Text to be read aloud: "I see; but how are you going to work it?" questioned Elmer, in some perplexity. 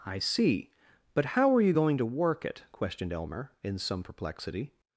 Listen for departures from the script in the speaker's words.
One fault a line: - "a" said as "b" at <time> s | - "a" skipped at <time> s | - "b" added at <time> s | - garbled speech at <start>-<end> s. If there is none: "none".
none